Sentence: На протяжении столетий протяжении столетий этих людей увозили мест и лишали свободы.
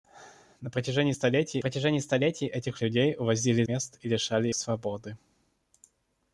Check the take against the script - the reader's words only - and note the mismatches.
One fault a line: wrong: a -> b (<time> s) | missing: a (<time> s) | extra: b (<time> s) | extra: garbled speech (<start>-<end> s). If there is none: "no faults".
no faults